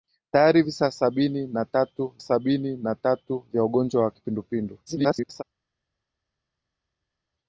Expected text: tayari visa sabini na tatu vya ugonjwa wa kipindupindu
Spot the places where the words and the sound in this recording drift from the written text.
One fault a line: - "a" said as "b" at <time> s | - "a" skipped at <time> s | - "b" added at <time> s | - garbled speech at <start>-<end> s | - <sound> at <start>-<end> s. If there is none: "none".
- "sabini na tatu" added at 2.2 s
- garbled speech at 4.9-5.4 s